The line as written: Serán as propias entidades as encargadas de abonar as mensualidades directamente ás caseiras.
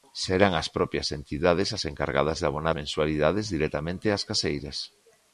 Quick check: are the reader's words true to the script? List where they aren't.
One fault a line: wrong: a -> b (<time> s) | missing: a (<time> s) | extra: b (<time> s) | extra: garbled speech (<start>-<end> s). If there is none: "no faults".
missing: as (2.8 s)